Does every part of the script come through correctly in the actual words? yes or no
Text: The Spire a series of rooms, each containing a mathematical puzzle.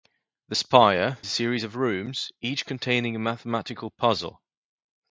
yes